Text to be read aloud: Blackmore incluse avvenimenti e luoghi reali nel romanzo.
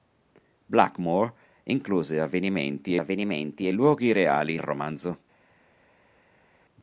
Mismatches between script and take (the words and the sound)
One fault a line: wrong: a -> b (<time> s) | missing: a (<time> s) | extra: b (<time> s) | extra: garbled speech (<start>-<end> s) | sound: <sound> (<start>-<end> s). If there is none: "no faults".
extra: avvenimenti (3.0 s)
missing: nel (4.6 s)